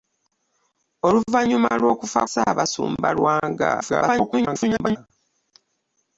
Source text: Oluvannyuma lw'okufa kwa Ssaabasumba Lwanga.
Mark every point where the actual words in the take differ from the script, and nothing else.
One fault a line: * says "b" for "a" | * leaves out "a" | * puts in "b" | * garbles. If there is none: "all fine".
* leaves out "kwa"
* garbles